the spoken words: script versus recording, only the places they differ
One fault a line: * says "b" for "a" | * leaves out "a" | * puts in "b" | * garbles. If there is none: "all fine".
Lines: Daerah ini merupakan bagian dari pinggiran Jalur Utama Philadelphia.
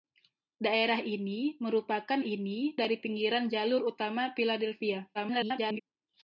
* says "ini" for "bagian"
* garbles